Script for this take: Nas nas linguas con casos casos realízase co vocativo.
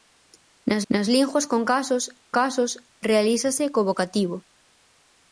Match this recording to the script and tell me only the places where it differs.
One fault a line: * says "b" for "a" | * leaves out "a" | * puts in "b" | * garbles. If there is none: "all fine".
all fine